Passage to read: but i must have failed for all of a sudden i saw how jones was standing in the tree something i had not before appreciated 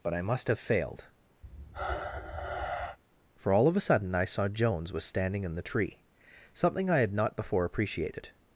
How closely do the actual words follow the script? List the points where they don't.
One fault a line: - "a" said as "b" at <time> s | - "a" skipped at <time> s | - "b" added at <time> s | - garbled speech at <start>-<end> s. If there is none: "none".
- "how" skipped at 4.5 s